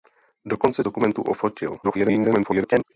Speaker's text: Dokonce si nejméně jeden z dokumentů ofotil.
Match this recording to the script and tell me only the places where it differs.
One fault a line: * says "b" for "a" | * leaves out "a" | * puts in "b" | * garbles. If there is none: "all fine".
* leaves out "si nejméně jeden"
* garbles